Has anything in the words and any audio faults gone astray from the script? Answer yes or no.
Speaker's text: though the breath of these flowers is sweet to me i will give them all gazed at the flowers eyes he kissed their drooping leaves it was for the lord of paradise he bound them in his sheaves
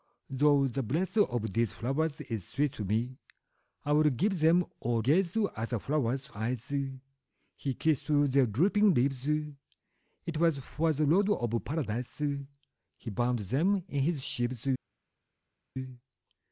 no